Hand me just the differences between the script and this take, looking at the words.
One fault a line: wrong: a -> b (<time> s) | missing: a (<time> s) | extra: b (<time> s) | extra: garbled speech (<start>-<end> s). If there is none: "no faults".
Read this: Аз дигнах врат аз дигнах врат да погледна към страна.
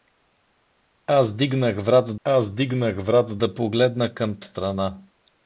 no faults